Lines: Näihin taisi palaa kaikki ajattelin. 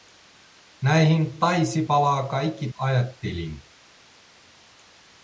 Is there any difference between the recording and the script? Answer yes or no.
no